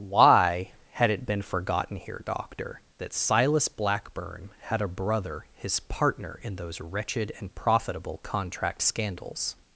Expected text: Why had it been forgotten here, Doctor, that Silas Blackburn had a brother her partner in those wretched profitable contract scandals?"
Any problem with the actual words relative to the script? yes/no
yes